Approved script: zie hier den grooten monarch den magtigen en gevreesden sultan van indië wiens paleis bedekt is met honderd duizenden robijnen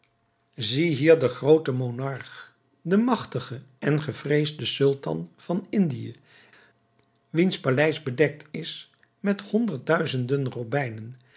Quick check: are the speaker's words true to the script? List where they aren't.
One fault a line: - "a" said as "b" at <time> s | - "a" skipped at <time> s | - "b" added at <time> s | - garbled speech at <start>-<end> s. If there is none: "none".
none